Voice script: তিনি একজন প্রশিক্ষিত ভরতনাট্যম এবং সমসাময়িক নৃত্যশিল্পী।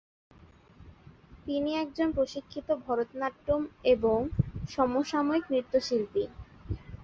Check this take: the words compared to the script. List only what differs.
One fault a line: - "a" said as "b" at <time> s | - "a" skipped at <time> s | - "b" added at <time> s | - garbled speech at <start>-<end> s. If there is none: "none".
none